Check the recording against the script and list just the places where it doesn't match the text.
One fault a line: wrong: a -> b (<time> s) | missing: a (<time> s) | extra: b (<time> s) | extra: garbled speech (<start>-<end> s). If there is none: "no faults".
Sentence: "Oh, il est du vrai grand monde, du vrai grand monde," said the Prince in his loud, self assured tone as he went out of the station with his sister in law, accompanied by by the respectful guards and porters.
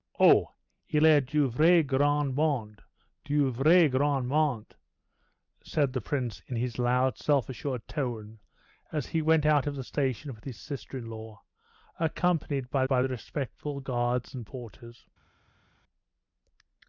no faults